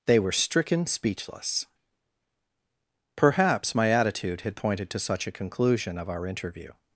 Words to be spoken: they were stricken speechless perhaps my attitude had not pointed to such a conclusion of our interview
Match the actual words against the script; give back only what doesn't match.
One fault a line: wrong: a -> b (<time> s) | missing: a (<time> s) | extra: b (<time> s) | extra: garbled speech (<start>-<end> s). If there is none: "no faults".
missing: not (4.5 s)